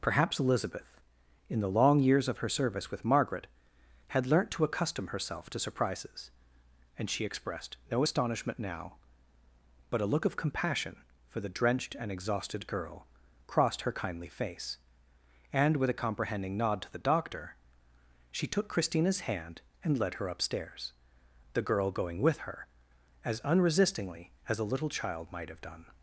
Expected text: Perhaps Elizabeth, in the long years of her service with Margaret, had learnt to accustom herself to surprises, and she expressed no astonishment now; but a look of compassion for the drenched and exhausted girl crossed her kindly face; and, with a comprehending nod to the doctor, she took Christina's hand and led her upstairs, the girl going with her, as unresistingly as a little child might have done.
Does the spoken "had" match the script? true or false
true